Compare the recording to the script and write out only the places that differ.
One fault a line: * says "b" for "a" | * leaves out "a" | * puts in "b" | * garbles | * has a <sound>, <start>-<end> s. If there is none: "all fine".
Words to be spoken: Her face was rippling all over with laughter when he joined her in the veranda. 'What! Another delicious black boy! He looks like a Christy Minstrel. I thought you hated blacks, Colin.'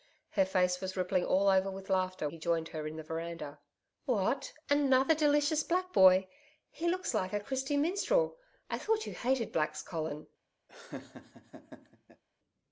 * leaves out "when"
* has a laugh, 10.7-12.2 s